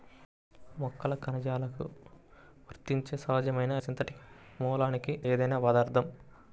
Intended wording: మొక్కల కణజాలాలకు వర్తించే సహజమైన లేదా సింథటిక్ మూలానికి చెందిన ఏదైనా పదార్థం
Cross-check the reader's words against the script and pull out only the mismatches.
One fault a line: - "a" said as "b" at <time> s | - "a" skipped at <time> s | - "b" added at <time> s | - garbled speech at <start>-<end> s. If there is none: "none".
- "లేదా" skipped at 3.7 s
- "చెందిన" skipped at 5.1 s